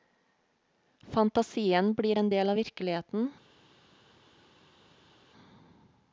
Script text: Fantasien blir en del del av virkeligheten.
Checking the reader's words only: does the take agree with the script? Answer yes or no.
no